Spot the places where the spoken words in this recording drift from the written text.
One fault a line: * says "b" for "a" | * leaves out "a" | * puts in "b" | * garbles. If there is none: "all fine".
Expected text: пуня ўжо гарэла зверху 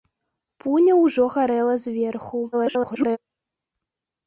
* garbles